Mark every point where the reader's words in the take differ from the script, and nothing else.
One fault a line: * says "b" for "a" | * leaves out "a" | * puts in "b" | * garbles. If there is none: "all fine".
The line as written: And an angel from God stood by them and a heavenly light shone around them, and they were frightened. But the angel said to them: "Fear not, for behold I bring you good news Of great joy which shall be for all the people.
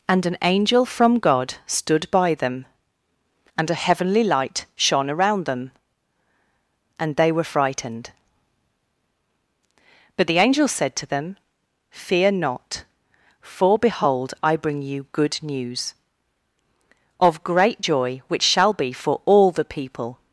all fine